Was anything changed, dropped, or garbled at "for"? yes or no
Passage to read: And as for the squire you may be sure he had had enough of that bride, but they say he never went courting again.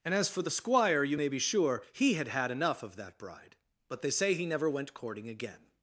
no